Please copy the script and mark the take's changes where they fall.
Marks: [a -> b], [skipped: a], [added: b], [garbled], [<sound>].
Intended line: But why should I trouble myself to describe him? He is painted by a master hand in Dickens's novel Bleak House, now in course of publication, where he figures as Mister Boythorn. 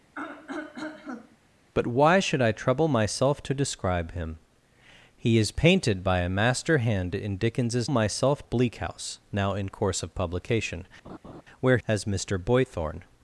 [throat clearing] But why should I trouble myself to describe him? He is painted by a master hand in Dickens's [novel -> myself] Bleak House, now in course of publication, [laugh] where [skipped: he figures] as Mister Boythorn.